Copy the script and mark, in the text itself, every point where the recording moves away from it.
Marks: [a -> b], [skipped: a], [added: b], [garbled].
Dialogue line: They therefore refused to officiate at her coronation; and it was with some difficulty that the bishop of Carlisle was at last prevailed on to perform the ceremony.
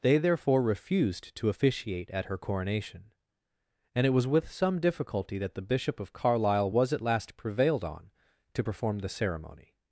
They therefore refused to officiate at her coronation; and it was with some difficulty that the bishop of Carlisle was at last prevailed on to perform the ceremony.